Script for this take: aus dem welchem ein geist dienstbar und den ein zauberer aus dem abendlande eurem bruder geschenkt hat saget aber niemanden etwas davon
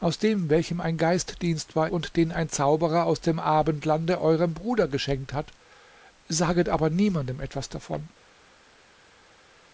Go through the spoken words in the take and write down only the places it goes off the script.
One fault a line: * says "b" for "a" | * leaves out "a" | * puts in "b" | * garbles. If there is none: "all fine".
all fine